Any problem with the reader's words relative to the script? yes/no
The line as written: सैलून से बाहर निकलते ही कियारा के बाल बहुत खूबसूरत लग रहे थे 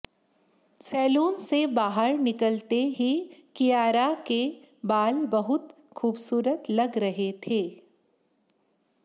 no